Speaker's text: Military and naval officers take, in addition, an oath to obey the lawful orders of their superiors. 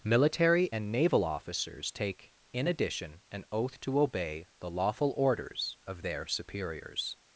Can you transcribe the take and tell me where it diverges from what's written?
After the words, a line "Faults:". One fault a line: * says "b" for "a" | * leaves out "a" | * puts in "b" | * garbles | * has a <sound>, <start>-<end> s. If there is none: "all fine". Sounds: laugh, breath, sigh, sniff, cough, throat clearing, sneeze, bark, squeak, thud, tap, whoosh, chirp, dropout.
Military and naval officers take, in addition, an oath to obey the lawful orders of their superiors.
Faults:
all fine